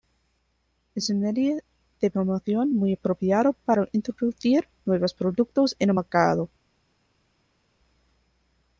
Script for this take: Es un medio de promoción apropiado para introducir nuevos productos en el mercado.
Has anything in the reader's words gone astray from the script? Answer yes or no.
yes